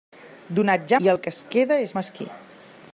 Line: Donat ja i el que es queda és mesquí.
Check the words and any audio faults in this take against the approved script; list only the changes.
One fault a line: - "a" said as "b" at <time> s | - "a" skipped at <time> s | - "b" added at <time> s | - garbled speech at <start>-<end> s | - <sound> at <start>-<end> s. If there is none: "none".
none